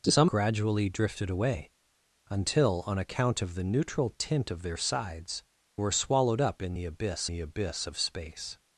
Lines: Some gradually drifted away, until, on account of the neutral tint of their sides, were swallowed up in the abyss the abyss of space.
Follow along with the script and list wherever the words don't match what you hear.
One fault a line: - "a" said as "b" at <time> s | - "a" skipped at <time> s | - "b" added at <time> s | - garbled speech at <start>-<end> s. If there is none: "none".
none